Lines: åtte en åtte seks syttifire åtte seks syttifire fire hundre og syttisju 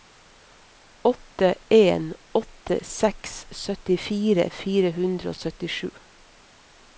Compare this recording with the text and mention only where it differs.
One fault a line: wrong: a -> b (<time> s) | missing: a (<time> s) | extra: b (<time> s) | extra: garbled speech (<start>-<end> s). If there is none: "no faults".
missing: åtte seks syttifire (4.5 s)